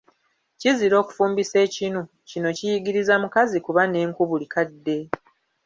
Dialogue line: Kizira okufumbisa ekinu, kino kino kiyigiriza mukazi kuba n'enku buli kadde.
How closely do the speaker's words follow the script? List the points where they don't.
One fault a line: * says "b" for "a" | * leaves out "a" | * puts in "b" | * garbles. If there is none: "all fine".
* leaves out "kino"